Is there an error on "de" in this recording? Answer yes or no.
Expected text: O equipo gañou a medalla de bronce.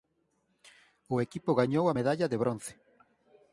no